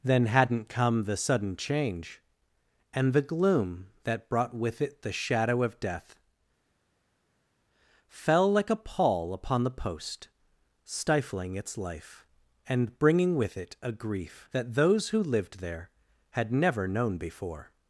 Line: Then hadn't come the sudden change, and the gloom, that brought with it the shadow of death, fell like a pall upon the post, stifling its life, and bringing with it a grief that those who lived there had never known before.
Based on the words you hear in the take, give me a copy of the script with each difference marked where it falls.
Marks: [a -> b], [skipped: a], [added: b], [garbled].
Then hadn't come the sudden change, and the gloom, that brought with it the shadow of death, fell like a pall upon the post, stifling its life, and bringing with it a grief that those who lived there had never known before.